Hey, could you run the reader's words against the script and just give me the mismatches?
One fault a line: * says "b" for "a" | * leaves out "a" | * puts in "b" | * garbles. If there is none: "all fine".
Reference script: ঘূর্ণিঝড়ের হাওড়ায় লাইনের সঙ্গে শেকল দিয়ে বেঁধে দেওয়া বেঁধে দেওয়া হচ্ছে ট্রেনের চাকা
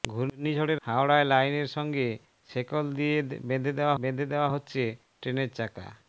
all fine